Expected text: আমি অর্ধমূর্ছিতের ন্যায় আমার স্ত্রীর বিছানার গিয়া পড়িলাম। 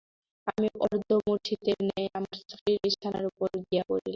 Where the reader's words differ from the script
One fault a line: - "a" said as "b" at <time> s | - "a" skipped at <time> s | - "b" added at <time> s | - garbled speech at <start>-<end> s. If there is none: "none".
- "উপর" added at 3.3 s